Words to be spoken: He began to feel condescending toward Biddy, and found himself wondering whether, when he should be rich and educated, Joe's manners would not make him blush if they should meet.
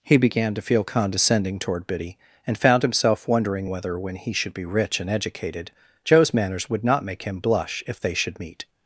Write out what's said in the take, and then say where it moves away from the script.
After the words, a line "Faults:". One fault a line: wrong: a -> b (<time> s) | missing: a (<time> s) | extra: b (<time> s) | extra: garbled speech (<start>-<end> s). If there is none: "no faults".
He began to feel condescending toward Biddy, and found himself wondering whether, when he should be rich and educated, Joe's manners would not make him blush if they should meet.
Faults:
no faults